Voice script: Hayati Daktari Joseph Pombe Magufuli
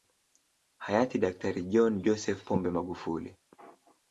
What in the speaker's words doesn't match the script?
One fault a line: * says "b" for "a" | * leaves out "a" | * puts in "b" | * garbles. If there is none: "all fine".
* puts in "John"